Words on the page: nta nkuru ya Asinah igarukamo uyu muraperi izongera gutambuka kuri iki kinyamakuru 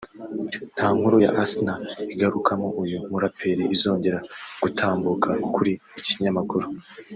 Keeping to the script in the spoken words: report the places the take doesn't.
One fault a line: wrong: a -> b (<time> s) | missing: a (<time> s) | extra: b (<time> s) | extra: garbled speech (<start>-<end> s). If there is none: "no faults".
no faults